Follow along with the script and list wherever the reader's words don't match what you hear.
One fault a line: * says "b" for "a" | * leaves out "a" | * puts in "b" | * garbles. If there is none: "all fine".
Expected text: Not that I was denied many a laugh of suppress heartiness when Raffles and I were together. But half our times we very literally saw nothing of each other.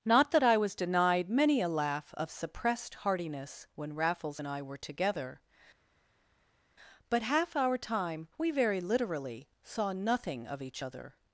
* says "suppressed" for "suppress"
* says "time" for "times"